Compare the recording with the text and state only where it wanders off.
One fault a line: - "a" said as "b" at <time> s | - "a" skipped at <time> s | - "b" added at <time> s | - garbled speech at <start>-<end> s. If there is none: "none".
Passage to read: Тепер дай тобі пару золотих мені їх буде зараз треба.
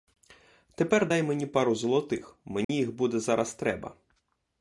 - "тобі" said as "мені" at 1.2 s